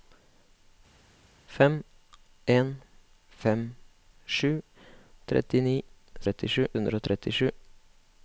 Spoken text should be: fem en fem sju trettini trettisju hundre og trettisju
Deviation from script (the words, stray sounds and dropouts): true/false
false